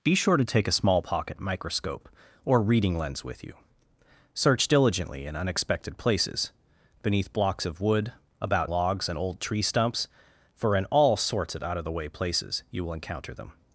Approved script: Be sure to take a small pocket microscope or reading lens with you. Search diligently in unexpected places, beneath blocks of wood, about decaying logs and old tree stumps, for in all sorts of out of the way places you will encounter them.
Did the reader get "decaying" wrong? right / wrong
wrong